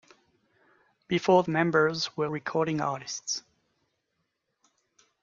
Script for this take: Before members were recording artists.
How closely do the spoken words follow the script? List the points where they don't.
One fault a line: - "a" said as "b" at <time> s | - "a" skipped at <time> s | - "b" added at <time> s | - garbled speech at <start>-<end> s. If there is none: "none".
none